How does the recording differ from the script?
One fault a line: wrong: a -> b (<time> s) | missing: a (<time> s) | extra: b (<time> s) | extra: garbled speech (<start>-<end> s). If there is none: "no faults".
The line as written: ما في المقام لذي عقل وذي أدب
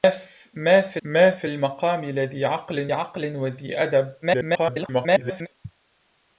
extra: ما في (1.0 s)
extra: عقل (2.9 s)
extra: garbled speech (4.2-5.5 s)